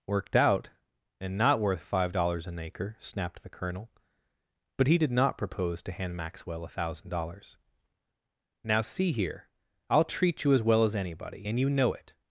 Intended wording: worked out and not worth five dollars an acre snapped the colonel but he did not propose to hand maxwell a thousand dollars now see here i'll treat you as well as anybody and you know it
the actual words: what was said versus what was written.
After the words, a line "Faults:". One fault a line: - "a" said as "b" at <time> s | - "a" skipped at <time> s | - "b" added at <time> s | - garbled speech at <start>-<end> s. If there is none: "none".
worked out and not worth five dollars an acre snapped the colonel but he did not propose to hand maxwell a thousand dollars now see here i'll treat you as well as anybody and you know it
Faults:
none